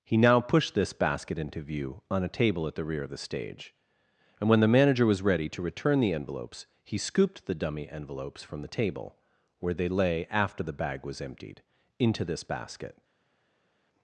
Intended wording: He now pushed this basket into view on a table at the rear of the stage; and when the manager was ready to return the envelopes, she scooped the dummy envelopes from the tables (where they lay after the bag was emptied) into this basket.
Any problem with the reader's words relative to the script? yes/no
yes